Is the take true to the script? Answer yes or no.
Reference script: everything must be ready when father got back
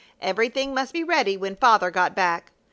yes